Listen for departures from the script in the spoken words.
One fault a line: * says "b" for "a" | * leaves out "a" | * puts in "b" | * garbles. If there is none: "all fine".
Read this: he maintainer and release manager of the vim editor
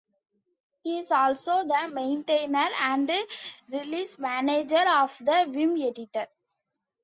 * puts in "is also the"